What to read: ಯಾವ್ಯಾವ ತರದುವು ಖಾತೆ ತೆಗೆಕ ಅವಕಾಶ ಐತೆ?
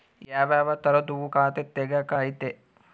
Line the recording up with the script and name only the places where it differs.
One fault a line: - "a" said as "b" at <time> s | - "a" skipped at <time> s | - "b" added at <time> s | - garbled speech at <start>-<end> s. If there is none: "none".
- "ಅವಕಾಶ" skipped at 2.1 s